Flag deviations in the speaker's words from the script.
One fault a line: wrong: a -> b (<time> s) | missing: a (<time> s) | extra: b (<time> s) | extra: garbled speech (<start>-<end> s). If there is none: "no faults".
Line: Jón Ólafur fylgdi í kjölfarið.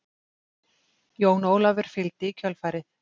no faults